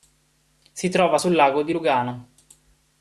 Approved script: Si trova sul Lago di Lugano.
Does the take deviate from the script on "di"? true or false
false